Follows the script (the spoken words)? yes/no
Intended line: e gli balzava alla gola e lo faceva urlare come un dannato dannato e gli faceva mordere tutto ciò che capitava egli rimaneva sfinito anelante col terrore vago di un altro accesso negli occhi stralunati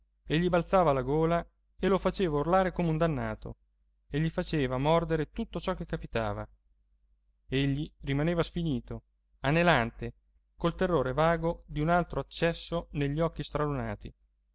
no